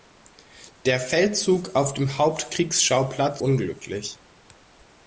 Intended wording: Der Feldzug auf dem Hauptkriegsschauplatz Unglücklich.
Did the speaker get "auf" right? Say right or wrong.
right